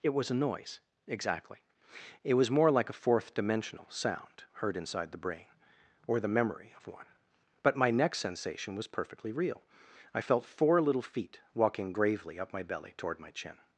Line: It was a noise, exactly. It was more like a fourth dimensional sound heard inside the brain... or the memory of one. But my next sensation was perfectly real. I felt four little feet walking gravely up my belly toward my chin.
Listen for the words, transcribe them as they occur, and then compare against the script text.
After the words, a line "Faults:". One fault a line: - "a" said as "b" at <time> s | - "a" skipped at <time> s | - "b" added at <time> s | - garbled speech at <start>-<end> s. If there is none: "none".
It was a noise, exactly. It was more like a fourth dimensional sound heard inside the brain... or the memory of one. But my next sensation was perfectly real. I felt four little feet walking gravely up my belly toward my chin.
Faults:
none